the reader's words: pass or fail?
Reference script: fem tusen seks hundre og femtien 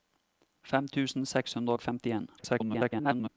fail